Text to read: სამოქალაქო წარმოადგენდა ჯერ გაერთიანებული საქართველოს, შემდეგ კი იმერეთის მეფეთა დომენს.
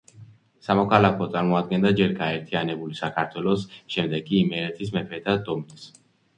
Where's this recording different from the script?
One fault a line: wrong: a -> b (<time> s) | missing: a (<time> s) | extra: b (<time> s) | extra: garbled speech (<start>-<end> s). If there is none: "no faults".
no faults